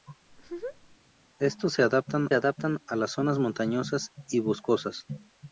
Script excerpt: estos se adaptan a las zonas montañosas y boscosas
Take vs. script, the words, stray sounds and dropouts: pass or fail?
fail